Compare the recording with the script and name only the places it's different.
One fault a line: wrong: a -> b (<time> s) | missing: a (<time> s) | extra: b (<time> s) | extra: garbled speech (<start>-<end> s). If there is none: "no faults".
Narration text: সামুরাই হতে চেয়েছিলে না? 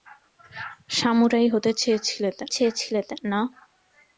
extra: চেয়েছিলে (2.5 s)